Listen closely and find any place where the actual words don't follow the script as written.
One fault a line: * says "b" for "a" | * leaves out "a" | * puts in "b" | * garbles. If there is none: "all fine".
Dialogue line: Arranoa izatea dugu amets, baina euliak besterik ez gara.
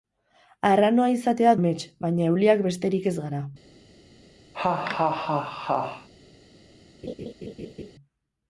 * leaves out "dugu"